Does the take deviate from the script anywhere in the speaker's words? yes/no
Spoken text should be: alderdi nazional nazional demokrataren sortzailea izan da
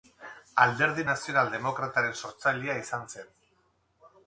yes